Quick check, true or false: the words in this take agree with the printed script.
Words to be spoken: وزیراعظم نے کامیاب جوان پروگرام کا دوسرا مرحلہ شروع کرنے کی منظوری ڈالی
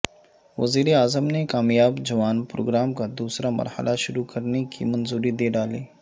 false